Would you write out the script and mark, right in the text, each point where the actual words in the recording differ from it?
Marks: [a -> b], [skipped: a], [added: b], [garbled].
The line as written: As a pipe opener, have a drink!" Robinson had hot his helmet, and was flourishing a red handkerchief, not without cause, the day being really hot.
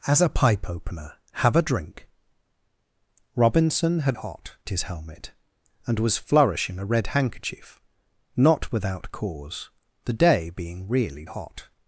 As a pipe opener, have a drink!" Robinson had hot his helmet, and was flourishing a red handkerchief, not without cause, the day being really hot.